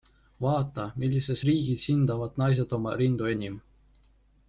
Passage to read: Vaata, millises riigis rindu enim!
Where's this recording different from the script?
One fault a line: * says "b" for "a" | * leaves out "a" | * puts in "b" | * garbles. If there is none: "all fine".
* puts in "hindavad naised oma"